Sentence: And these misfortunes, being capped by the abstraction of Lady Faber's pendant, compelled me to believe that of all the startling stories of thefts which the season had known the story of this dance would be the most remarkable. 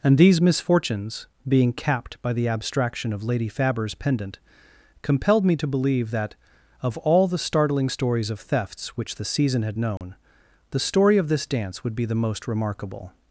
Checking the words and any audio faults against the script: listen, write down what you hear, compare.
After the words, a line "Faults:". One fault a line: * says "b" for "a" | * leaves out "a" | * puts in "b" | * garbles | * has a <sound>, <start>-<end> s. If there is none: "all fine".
And these misfortunes, being capped by the abstraction of Lady Faber's pendant, compelled me to believe that of all the startling stories of thefts which the season had known the story of this dance would be the most remarkable.
Faults:
* has a dropout, 10.0-10.0 s